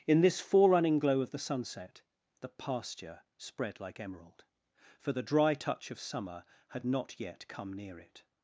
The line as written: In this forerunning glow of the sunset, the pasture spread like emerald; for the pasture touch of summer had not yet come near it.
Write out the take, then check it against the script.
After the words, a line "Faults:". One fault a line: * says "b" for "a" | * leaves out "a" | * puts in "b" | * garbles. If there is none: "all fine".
In this forerunning glow of the sunset, the pasture spread like emerald; for the dry touch of summer had not yet come near it.
Faults:
* says "dry" for "pasture"